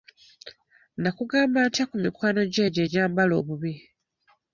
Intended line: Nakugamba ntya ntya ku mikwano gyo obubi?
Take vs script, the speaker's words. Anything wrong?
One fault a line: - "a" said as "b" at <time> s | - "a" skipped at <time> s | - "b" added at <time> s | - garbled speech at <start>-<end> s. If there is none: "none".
- "ntya" skipped at 1.8 s
- "egyo egyambala" added at 2.7 s